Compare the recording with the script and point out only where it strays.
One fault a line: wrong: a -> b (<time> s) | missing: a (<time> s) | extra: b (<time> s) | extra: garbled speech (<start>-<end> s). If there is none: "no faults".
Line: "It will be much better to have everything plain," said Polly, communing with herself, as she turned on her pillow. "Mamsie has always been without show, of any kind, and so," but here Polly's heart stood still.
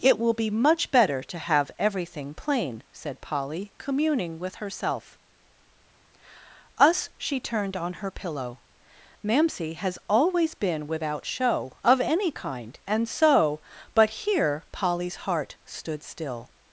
wrong: as -> us (6.8 s)